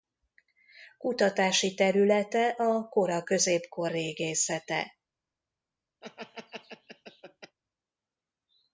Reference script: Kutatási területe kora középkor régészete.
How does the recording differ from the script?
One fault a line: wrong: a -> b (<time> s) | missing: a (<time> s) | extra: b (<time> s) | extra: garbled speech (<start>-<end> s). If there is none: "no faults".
extra: a (2.5 s)